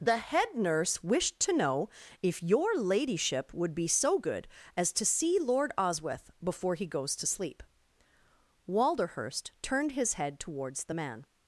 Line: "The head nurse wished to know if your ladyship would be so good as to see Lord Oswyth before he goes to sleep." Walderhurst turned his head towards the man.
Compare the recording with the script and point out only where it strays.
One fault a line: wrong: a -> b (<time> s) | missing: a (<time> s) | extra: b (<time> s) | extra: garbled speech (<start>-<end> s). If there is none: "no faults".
no faults